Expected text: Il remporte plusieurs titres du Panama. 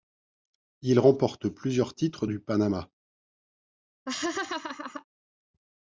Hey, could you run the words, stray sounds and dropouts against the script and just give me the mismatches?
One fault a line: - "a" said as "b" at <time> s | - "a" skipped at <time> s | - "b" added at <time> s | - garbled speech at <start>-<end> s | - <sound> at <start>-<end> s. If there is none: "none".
- laugh at 4.1-5.0 s